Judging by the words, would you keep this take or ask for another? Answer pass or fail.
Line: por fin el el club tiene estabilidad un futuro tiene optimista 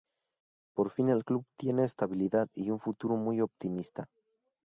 fail